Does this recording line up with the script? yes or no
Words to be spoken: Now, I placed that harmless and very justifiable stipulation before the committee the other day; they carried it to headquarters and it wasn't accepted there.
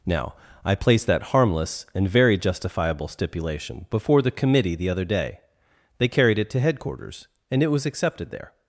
no